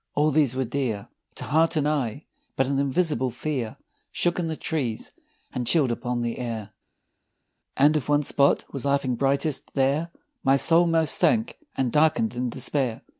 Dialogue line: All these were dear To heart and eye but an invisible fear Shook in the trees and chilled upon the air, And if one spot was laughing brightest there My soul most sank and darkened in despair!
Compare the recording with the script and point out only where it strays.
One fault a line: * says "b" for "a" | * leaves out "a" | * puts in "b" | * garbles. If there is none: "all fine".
all fine